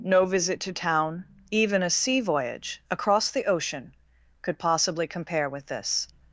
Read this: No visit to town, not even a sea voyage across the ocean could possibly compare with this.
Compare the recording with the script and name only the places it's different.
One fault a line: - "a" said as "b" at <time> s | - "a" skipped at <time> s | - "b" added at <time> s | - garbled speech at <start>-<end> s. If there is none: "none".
- "not" skipped at 1.2 s